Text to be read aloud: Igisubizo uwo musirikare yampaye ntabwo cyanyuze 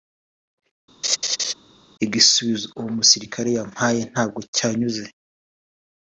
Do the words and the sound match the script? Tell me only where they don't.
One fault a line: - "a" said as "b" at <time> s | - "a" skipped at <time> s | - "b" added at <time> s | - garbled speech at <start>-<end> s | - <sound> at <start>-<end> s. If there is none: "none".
- laugh at 1.0-1.5 s